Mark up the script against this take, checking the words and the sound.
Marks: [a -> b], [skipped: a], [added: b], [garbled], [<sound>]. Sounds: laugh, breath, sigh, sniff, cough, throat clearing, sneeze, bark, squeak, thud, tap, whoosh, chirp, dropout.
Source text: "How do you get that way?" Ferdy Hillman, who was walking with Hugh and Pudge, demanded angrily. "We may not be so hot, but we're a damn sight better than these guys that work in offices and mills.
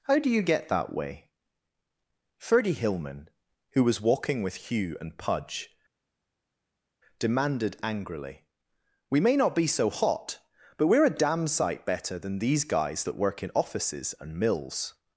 "How do you get that way?" Ferdy Hillman, who was walking with Hugh and Pudge, demanded angrily. "We may not be so hot, but we're a damn sight better than these guys that work in offices and mills.